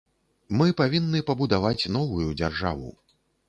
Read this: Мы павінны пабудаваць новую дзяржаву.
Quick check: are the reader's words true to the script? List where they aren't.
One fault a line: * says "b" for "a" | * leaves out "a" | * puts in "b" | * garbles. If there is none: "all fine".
all fine